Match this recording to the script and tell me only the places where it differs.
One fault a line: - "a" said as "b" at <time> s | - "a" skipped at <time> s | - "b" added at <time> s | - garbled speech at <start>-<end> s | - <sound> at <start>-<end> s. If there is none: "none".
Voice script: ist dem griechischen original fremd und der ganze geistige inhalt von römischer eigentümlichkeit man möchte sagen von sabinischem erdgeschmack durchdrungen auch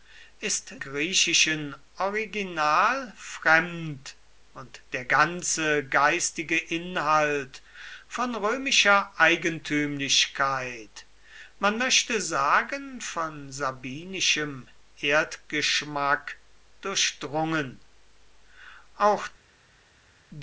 - "dem" skipped at 0.7 s